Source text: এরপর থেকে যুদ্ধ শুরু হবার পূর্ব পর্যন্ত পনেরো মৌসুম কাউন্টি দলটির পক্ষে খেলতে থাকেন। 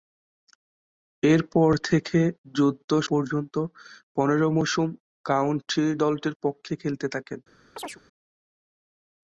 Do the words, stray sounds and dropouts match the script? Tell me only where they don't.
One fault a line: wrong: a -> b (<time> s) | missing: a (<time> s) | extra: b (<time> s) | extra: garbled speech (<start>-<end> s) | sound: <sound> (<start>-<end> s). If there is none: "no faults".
missing: শুরু হবার পূর্ব (2.9 s)
sound: chirp (7.8-8.0 s)